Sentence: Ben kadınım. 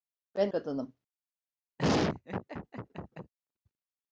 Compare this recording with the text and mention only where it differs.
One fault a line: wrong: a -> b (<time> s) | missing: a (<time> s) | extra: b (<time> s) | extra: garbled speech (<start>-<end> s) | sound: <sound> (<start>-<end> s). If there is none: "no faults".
sound: laugh (1.8-3.3 s)